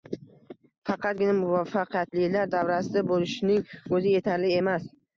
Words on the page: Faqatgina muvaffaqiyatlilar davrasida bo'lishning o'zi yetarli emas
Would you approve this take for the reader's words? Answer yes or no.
yes